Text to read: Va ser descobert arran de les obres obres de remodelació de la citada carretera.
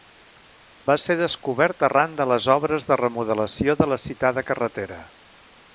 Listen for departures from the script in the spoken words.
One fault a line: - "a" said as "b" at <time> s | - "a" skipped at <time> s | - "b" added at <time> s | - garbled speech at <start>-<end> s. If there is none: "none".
- "obres" skipped at 2.9 s